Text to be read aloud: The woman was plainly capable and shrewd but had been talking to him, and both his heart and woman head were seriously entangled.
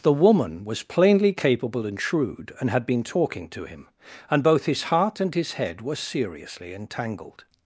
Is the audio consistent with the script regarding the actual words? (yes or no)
no